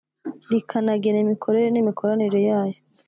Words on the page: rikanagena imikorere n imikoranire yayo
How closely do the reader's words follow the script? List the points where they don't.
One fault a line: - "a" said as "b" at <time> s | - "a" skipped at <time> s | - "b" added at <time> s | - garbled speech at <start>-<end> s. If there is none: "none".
none